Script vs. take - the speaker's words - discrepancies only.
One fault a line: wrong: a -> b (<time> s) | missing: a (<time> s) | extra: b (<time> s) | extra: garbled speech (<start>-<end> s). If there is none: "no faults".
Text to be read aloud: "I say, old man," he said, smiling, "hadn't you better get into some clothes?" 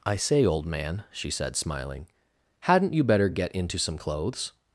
wrong: he -> she (1.1 s)